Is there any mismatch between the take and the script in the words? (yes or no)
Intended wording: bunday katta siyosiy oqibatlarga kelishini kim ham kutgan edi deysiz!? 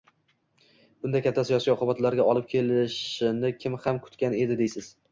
yes